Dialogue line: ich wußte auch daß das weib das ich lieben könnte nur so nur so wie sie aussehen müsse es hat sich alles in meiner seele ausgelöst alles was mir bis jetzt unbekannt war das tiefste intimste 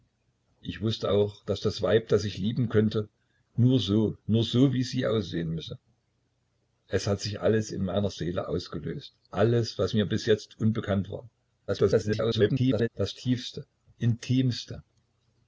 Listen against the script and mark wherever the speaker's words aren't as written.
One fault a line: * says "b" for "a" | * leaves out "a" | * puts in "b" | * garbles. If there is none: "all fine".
* garbles